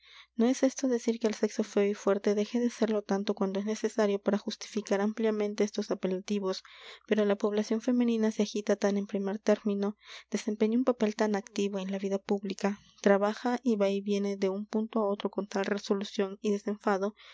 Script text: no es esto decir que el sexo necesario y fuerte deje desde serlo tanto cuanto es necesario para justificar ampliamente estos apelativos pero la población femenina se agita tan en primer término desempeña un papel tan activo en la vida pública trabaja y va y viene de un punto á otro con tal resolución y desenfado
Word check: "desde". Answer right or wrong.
wrong